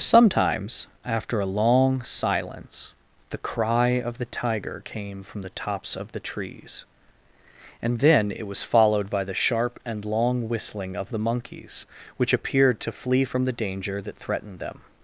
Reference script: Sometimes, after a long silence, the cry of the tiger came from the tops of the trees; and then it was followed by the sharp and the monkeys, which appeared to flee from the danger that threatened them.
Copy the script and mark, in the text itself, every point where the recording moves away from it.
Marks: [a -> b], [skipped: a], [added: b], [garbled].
Sometimes, after a long silence, the cry of the tiger came from the tops of the trees; and then it was followed by the sharp and [added: long whistling of] the monkeys, which appeared to flee from the danger that threatened them.